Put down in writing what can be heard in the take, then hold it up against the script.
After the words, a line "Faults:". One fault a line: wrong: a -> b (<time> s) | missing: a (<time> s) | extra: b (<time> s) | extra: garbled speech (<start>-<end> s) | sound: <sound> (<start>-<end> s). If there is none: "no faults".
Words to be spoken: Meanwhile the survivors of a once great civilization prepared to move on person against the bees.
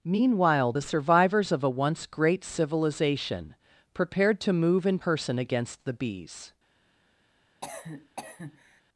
Meanwhile the survivors of a once great civilization prepared to move in person against the bees.
Faults:
wrong: on -> in (4.9 s)
sound: cough (7.6-8.8 s)